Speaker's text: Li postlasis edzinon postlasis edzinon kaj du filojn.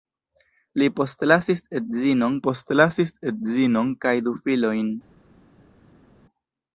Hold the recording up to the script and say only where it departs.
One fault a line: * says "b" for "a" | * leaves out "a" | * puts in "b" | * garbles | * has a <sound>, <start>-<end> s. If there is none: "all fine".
all fine